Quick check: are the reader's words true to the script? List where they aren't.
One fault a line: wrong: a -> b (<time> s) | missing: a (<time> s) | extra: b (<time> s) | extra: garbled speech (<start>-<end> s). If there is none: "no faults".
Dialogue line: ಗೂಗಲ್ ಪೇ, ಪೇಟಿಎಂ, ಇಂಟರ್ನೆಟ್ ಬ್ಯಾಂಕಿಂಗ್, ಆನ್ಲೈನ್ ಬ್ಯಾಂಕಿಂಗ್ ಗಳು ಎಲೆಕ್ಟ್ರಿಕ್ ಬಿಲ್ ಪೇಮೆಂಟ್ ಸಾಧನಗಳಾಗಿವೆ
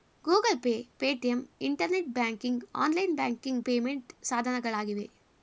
missing: ಗಳು ಎಲೆಕ್ಟ್ರಿಕ್ ಬಿಲ್ (3.6 s)